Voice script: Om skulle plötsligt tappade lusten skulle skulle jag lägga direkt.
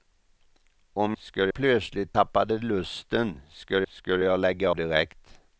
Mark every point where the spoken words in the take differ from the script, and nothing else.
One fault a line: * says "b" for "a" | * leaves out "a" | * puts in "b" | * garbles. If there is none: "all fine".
all fine